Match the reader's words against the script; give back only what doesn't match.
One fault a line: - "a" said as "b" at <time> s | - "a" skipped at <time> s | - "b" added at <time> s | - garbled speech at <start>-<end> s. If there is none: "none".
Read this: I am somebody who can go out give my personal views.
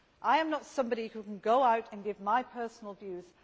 - "not" added at 0.5 s
- "and" added at 1.9 s